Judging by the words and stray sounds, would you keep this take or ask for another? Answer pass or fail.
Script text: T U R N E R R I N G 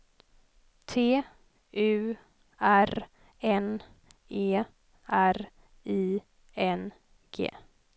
fail